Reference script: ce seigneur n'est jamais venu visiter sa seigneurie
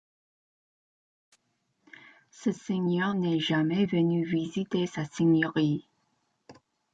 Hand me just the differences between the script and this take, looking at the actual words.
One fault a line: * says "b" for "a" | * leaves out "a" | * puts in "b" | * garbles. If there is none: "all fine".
all fine